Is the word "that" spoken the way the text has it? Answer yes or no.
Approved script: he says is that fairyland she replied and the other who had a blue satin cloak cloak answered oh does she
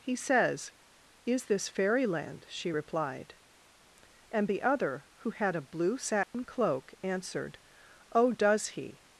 no